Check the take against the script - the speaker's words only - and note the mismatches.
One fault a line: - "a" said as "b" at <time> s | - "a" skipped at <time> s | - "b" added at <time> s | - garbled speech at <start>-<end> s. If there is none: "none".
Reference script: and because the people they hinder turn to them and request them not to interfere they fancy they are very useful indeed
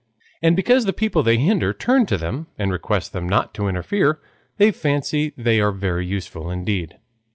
none